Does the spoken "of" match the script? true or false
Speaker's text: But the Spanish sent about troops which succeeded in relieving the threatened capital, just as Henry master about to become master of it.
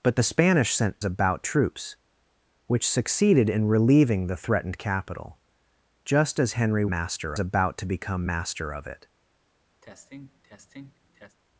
true